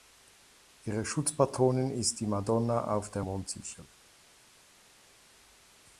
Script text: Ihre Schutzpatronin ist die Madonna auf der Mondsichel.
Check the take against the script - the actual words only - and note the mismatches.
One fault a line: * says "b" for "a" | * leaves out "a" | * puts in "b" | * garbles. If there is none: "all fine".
all fine